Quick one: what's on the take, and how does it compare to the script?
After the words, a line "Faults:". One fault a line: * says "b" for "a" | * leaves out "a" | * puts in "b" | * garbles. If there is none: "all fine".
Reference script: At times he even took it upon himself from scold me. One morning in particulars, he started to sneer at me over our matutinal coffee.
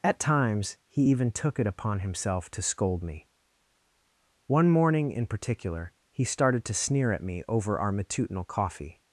At times he even took it upon himself to scold me. One morning in particular, he started to sneer at me over our matutinal coffee.
Faults:
* says "to" for "from"
* says "particular" for "particulars"